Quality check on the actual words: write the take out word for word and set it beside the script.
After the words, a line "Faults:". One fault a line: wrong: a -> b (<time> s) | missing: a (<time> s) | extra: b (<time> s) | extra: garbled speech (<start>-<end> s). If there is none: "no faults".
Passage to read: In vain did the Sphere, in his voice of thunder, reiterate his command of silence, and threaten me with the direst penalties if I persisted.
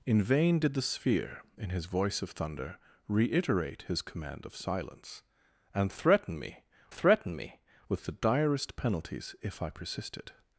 In vain did the Sphere, in his voice of thunder, reiterate his command of silence, and threaten me threaten me with the direst penalties if I persisted.
Faults:
extra: threaten me (6.9 s)